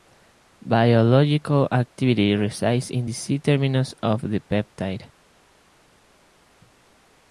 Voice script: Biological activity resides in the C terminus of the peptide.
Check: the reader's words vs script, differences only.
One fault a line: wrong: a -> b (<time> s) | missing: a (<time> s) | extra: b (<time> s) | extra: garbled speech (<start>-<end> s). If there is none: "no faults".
no faults